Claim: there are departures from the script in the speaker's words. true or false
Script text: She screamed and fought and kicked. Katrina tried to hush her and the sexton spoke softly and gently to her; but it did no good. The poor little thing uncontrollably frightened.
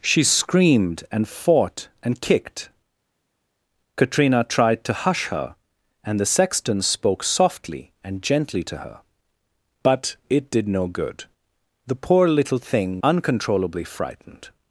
false